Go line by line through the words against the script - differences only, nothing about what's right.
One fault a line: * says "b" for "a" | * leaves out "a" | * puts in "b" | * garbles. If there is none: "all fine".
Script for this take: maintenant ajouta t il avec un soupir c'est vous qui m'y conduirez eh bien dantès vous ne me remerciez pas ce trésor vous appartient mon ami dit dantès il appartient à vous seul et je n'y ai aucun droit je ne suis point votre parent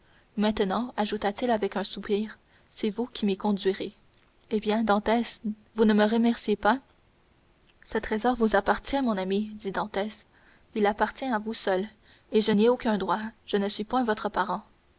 all fine